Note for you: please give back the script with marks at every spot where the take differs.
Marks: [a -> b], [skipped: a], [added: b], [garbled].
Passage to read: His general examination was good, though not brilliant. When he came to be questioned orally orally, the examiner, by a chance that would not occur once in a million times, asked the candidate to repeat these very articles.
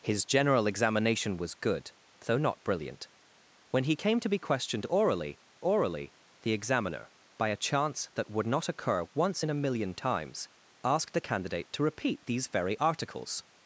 His general examination was good, though not brilliant. When he came to be questioned orally orally, the examiner, by a chance that would not occur once in a million times, asked the candidate to repeat these very articles.